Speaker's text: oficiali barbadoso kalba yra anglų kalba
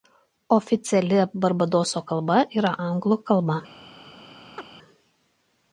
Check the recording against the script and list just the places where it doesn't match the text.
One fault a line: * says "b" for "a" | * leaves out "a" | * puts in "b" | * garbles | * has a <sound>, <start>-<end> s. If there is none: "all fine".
* has a chirp, 4.6-4.7 s